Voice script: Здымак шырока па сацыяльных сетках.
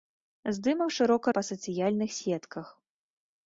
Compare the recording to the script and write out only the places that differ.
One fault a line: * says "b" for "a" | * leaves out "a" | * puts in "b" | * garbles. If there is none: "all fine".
all fine